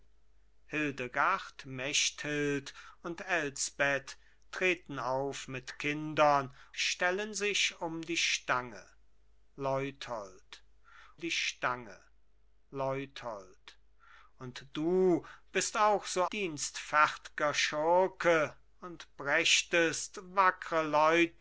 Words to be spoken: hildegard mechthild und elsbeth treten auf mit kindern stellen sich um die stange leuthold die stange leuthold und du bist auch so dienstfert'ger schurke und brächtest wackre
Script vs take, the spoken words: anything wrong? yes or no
no